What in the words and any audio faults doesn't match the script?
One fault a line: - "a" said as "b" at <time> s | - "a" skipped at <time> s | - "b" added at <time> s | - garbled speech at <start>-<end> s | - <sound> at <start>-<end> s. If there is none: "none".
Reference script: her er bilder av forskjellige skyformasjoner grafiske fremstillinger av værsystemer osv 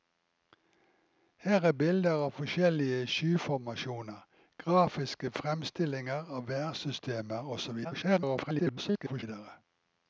- garbled speech at 7.8-9.2 s